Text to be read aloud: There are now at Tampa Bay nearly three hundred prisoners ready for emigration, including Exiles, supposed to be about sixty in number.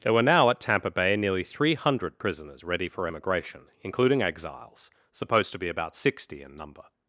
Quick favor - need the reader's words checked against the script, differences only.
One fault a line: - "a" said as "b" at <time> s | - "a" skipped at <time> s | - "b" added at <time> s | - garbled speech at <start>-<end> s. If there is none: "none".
- "are" said as "were" at 0.1 s